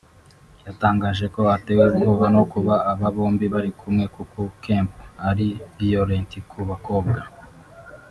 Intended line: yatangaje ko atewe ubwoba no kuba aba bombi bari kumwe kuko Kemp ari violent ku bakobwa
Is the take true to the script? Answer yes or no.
yes